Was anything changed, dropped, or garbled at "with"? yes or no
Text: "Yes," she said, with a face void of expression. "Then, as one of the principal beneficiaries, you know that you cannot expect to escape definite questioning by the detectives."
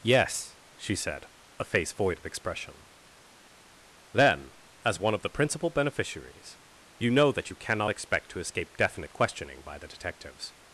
yes